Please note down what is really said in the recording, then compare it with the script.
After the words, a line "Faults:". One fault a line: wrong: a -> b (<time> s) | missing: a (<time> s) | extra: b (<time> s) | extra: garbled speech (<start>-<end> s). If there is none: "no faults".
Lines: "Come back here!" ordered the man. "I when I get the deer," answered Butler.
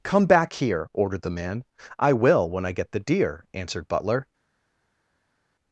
"Come back here!" ordered the man. "I will when I get the deer," answered Butler.
Faults:
extra: will (2.1 s)